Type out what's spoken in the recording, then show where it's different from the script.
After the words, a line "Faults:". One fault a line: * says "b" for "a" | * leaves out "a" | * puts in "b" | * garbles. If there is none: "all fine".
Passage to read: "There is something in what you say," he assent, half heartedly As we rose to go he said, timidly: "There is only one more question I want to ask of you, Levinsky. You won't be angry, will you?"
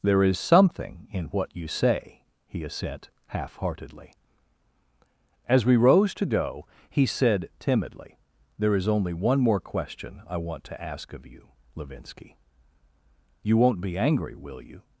"There is something in what you say," he assent, half heartedly As we rose to go he said, timidly: "There is only one more question I want to ask of you, Levinsky. You won't be angry, will you?"
Faults:
all fine